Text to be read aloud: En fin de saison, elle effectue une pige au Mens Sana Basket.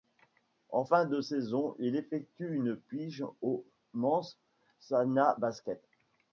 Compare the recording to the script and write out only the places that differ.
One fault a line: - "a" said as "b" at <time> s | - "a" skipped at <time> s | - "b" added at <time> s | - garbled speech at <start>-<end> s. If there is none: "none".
- "elle" said as "il" at 1.8 s